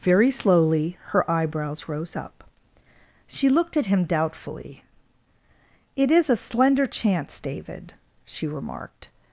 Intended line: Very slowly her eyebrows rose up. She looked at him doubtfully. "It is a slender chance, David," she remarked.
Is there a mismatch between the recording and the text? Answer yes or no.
no